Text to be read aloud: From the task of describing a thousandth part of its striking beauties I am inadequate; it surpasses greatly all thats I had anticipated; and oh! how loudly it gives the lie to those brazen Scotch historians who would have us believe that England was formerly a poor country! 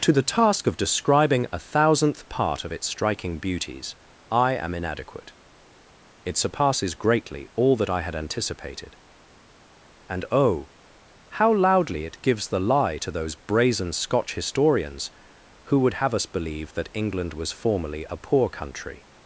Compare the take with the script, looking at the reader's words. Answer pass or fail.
fail